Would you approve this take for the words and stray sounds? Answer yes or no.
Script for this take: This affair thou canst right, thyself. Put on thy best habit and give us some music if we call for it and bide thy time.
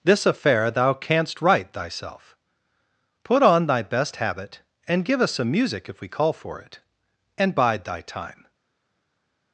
yes